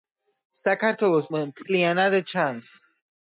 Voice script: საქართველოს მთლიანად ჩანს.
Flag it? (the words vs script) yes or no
no